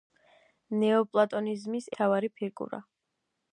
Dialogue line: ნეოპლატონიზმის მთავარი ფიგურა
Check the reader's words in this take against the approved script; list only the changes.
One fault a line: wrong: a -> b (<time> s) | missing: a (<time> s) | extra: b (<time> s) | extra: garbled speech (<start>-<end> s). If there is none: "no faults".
no faults